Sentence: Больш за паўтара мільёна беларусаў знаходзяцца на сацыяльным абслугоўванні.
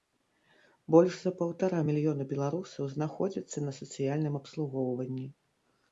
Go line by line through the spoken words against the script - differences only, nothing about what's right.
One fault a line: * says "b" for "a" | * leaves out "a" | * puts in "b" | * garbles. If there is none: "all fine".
all fine